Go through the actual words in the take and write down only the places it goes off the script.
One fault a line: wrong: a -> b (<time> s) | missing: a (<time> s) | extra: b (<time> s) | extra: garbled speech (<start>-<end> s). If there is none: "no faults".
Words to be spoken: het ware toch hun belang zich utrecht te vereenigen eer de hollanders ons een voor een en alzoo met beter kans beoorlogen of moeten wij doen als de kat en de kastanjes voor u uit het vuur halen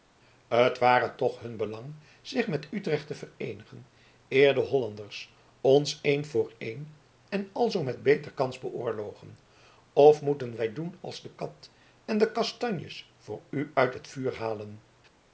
extra: met (2.5 s)